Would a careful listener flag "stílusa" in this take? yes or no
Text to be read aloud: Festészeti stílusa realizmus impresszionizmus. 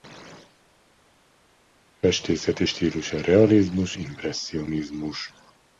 no